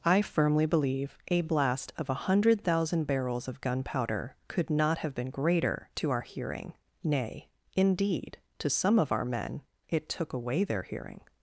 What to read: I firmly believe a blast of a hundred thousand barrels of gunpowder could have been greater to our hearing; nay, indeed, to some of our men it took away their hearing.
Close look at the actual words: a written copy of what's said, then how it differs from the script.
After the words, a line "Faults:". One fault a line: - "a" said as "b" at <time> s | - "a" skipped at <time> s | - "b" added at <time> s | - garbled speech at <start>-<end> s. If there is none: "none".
I firmly believe a blast of a hundred thousand barrels of gunpowder could not have been greater to our hearing; nay, indeed, to some of our men it took away their hearing.
Faults:
- "not" added at 4.7 s